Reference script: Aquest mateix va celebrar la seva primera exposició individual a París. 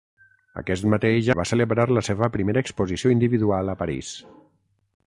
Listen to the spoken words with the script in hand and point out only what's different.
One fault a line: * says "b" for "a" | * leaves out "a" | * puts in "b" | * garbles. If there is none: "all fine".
all fine